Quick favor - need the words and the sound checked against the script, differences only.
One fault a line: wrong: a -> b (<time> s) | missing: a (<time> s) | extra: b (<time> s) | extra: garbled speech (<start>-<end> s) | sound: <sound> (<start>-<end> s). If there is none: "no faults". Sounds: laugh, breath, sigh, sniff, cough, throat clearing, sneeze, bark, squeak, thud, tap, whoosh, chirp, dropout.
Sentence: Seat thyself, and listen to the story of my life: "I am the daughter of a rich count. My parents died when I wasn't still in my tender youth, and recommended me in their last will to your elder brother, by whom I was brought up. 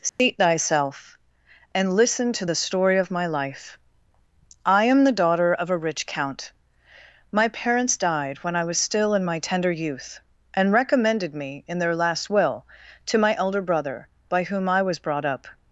sound: dropout (0.1-0.2 s)
wrong: wasn't -> was (8.6 s)
wrong: your -> my (13.2 s)